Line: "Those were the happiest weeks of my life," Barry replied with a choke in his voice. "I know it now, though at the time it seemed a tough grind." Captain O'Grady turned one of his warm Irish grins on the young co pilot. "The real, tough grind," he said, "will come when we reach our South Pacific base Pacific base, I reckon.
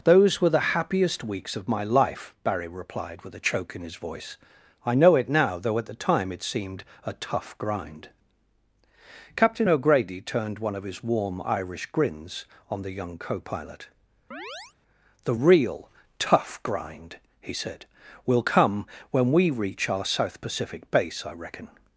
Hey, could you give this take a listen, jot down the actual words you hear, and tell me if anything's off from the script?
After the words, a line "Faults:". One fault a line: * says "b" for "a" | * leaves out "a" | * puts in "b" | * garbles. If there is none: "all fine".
"Those were the happiest weeks of my life," Barry replied with a choke in his voice. "I know it now, though at the time it seemed a tough grind." Captain O'Grady turned one of his warm Irish grins on the young co pilot. "The real, tough grind," he said, "will come when we reach our South Pacific base, I reckon.
Faults:
* leaves out "Pacific base"